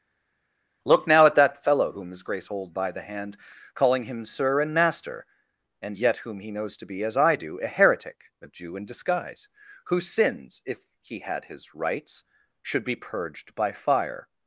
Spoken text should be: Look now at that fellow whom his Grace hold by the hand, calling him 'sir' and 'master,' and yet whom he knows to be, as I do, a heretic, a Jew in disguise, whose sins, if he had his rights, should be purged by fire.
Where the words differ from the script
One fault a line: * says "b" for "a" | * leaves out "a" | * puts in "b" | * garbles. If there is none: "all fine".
all fine